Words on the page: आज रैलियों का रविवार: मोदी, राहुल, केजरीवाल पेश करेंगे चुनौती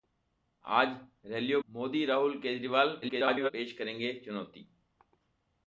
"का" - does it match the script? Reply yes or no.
no